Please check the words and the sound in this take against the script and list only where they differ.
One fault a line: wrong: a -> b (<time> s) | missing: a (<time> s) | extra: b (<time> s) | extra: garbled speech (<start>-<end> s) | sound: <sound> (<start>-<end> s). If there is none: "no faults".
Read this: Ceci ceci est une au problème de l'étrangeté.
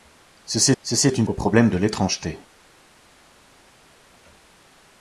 no faults